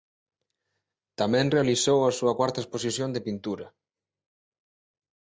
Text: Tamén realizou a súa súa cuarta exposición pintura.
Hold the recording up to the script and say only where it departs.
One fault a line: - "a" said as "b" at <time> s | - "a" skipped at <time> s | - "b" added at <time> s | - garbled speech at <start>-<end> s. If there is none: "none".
- "súa" skipped at 2.3 s
- "de" added at 3.1 s